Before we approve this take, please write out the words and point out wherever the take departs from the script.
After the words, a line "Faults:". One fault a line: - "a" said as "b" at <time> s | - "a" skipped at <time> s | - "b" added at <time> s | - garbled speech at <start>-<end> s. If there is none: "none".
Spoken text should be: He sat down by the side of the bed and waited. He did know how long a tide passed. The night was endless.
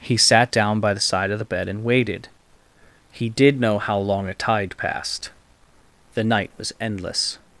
He sat down by the side of the bed and waited. He did know how long a tide passed. The night was endless.
Faults:
none